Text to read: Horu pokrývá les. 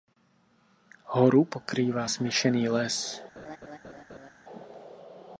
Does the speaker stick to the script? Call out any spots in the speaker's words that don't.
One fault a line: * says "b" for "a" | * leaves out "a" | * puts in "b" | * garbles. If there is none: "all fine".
* puts in "smíšený"